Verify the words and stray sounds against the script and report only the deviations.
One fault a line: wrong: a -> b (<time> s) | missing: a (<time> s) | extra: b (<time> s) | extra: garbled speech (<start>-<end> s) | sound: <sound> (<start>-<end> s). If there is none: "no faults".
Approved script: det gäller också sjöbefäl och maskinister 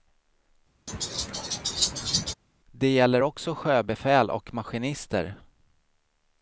sound: laugh (0.9-2.3 s)